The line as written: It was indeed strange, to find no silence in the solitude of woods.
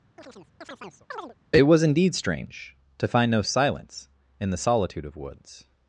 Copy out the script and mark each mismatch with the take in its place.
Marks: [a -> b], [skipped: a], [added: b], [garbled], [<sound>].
[chirp] It was indeed strange, to find no silence in the solitude of woods.